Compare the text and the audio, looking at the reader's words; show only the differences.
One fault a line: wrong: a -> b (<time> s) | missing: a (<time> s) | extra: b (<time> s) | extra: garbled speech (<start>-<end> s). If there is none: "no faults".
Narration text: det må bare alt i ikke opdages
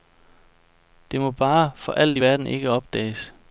extra: for (1.8 s)
extra: verden (2.1 s)